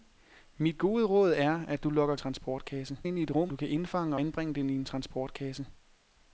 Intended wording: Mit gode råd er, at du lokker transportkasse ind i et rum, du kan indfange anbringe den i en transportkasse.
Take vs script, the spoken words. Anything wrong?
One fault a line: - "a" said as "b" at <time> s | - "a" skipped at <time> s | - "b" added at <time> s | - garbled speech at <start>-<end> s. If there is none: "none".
none